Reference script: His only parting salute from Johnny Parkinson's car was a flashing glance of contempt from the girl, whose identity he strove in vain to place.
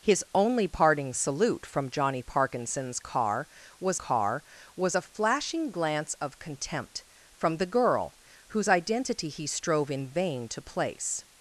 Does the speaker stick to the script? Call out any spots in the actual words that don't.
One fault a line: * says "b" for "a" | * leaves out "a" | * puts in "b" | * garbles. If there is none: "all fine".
* puts in "car was"